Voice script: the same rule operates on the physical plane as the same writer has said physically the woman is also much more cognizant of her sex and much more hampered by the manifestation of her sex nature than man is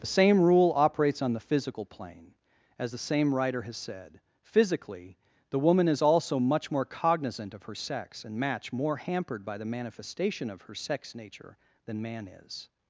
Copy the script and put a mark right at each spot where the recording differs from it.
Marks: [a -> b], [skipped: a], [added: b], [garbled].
the same rule operates on the physical plane as the same writer has said physically the woman is also much more cognizant of her sex and [much -> match] more hampered by the manifestation of her sex nature than man is